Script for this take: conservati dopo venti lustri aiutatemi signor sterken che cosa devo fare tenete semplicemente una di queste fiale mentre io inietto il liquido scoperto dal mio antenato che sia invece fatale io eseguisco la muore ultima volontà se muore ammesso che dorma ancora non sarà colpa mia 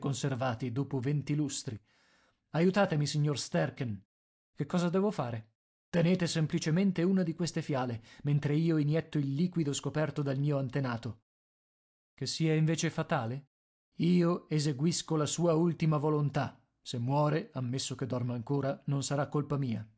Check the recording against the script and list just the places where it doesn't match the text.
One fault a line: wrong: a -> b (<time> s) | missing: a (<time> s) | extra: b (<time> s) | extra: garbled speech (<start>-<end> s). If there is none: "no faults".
wrong: muore -> sua (15.3 s)